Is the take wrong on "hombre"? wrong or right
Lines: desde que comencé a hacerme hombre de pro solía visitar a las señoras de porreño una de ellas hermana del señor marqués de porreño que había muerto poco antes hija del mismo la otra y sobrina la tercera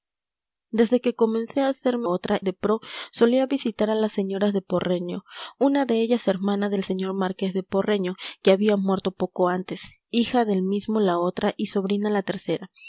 wrong